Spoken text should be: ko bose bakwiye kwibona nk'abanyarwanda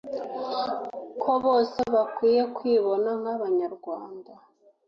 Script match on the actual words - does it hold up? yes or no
yes